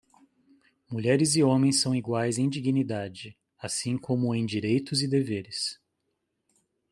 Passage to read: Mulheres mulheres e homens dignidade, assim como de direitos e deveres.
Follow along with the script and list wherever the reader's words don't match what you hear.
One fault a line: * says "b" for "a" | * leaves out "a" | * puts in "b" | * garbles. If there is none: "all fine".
* leaves out "mulheres"
* puts in "são iguais em"
* says "em" for "de"